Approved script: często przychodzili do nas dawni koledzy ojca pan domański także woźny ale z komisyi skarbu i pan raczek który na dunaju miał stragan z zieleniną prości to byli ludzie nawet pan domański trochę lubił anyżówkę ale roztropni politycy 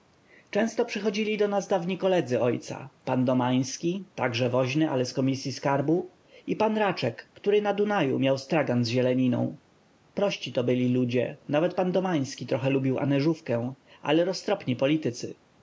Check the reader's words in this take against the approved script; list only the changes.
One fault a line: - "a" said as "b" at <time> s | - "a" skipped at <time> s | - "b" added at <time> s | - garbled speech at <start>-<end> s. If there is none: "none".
none